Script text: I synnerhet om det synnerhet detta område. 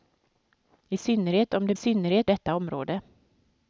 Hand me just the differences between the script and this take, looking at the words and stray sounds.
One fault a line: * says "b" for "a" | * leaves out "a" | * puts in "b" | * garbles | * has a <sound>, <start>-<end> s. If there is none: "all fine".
all fine